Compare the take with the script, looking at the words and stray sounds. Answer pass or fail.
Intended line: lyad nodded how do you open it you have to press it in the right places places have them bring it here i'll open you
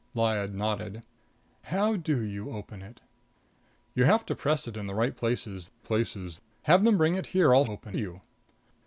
pass